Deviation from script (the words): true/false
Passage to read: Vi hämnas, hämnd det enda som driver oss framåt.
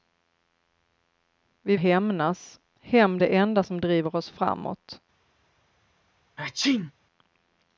false